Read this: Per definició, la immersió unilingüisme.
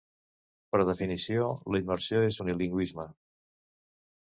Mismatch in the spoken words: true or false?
true